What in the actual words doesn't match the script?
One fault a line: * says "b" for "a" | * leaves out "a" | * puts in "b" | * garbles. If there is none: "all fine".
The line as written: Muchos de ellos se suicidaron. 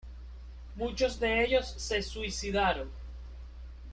all fine